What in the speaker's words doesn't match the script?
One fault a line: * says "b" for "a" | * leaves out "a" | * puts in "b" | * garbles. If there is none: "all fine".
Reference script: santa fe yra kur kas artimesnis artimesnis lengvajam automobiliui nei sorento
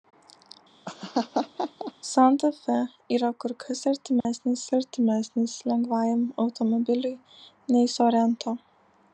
all fine